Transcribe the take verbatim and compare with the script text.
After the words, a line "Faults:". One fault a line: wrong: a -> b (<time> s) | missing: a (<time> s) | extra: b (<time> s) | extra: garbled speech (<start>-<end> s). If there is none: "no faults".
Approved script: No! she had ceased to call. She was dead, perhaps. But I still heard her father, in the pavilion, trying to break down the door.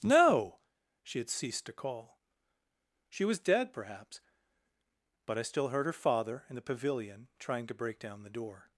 No! she had ceased to call. She was dead, perhaps. But I still heard her father, in the pavilion, trying to break down the door.
Faults:
no faults